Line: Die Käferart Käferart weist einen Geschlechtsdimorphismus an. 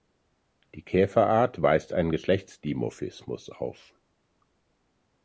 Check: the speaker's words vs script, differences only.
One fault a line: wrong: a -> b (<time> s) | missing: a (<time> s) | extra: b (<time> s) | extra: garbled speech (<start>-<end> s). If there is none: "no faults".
missing: Käferart (1.6 s)
wrong: an -> auf (3.5 s)